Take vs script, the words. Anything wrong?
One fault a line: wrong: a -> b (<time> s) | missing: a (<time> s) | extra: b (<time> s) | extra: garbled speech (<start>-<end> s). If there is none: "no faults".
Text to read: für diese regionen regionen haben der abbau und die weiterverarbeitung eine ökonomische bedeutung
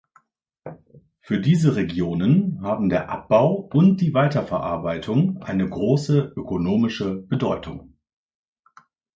missing: regionen (2.6 s)
extra: große (5.7 s)